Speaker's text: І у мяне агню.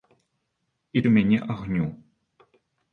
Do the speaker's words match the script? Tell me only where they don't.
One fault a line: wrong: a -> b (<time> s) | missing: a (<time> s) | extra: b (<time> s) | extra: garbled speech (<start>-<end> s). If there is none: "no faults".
no faults